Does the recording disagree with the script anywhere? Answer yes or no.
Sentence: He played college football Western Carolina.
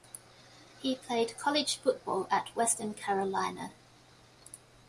yes